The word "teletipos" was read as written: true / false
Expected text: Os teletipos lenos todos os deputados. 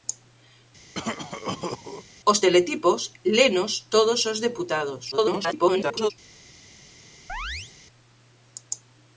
true